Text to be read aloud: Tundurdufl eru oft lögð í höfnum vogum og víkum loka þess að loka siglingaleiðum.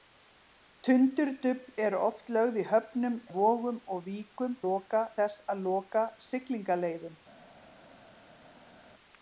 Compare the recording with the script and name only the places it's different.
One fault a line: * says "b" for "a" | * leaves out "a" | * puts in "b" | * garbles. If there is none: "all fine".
all fine